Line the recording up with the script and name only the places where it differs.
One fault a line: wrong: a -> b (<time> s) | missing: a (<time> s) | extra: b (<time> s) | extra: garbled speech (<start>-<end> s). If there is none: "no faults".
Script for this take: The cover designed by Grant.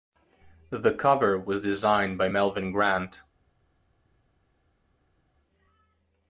extra: was (1.4 s)
extra: Melvyn (2.3 s)